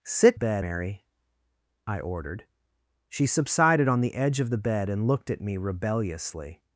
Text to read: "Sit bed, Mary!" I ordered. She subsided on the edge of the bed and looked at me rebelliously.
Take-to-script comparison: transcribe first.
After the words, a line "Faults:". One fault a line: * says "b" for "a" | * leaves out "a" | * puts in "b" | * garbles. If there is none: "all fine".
"Sit bed, Mary!" I ordered. She subsided on the edge of the bed and looked at me rebelliously.
Faults:
all fine